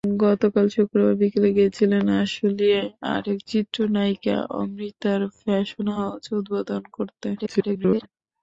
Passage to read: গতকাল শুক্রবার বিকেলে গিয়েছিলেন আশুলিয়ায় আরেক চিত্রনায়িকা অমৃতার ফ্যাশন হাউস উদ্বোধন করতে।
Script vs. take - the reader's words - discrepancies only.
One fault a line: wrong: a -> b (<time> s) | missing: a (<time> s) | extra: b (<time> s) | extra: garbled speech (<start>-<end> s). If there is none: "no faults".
extra: garbled speech (7.4-8.1 s)